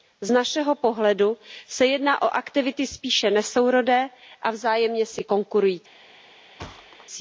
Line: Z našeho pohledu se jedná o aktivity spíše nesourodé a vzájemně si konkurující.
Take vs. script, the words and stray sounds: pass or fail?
fail